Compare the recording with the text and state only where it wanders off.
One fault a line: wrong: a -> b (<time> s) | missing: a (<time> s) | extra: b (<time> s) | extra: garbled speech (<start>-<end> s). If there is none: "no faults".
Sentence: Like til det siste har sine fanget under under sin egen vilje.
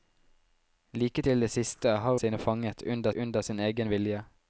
no faults